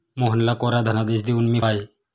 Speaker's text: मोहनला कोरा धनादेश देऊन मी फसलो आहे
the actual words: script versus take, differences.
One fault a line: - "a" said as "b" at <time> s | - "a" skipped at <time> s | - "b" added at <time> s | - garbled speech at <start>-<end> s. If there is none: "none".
- "फसलो" skipped at 1.6 s